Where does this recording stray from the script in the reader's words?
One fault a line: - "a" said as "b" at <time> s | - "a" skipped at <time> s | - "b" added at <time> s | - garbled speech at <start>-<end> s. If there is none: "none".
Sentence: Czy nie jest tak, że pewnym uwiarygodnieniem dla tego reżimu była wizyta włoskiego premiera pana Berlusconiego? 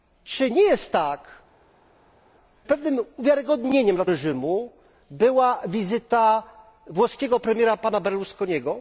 - "że" skipped at 1.2 s
- "tego" skipped at 4.0 s